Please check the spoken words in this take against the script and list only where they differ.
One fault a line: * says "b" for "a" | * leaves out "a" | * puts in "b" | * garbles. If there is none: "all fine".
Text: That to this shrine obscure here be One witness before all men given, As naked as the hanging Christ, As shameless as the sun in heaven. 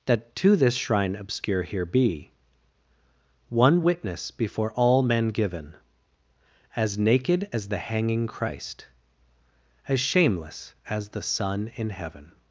all fine